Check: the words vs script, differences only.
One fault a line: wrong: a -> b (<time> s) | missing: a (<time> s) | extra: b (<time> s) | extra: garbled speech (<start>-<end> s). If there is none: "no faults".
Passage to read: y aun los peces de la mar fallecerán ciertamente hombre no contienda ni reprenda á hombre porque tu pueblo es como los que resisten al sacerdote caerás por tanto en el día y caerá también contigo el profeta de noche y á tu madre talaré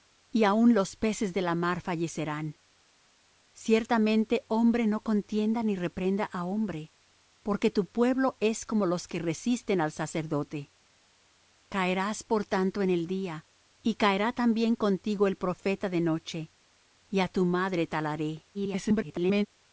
extra: garbled speech (18.5-19.5 s)